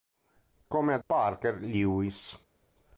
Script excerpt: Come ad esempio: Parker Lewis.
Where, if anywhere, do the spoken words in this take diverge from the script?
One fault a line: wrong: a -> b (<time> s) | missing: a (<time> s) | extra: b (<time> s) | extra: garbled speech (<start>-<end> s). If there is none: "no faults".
missing: esempio (1.0 s)